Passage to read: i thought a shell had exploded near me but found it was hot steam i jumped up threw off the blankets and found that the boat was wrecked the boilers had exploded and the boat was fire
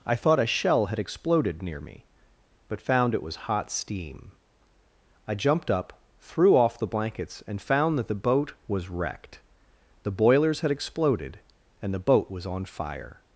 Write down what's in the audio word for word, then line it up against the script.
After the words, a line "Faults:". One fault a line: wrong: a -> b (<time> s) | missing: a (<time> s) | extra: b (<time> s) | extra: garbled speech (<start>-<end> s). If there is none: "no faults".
i thought a shell had exploded near me but found it was hot steam i jumped up threw off the blankets and found that the boat was wrecked the boilers had exploded and the boat was on fire
Faults:
extra: on (12.5 s)